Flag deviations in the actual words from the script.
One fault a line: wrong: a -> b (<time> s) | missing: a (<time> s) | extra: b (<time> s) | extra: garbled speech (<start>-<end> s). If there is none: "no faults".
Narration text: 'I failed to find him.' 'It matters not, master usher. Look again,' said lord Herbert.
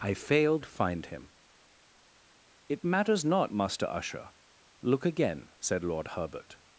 missing: to (0.7 s)